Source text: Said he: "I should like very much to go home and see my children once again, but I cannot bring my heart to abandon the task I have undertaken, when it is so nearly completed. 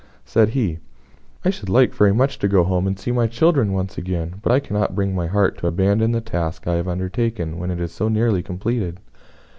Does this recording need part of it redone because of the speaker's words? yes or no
no